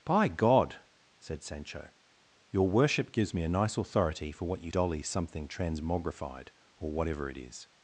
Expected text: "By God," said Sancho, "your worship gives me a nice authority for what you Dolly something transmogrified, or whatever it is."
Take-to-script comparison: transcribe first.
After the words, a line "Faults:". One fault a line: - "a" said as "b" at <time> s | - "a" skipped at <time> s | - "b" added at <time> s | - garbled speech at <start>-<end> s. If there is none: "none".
"By God," said Sancho, "your worship gives me a nice authority for what you Dolly something transmogrified, or whatever it is."
Faults:
none